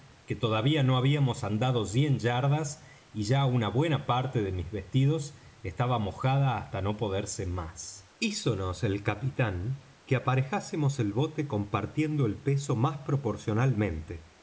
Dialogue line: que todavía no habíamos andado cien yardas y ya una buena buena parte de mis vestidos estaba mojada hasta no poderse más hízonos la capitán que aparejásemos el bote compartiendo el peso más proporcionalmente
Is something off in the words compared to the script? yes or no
yes